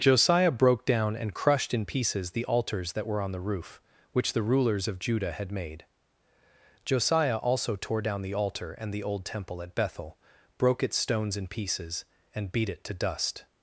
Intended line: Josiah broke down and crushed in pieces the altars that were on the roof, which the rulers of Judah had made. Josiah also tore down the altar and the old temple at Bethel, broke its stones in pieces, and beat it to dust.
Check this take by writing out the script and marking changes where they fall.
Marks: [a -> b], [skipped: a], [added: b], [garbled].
Josiah broke down and crushed in pieces the altars that were on the roof, which the rulers of Judah had made. Josiah also tore down the altar and the old temple at Bethel, broke its stones in pieces, and beat it to dust.